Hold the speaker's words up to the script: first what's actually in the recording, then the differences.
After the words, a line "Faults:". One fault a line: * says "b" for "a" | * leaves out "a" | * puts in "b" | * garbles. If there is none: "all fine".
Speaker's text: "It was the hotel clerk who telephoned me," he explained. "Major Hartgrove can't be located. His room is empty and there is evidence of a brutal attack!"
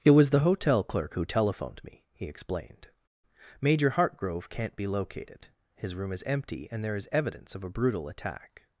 "It was the hotel clerk who telephoned me," he explained. "Major Hartgrove can't be located. His room is empty and there is evidence of a brutal attack!"
Faults:
all fine